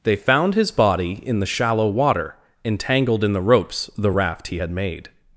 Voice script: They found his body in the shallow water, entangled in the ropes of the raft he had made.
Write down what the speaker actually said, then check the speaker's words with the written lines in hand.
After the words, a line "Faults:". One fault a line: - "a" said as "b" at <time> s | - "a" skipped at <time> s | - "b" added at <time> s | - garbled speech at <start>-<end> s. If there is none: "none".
They found his body in the shallow water, entangled in the ropes the raft he had made.
Faults:
- "of" skipped at 3.9 s